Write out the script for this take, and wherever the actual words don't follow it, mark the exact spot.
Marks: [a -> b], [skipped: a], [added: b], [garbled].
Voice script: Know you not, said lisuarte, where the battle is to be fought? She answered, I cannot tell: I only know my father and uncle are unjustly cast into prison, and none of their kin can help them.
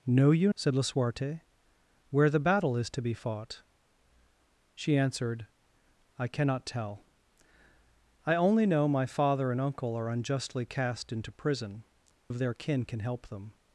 Know you [skipped: not,] said lisuarte, where the battle is to be fought? She answered, I cannot tell: I only know my father and uncle are unjustly cast into prison, [skipped: and none] of their kin can help them.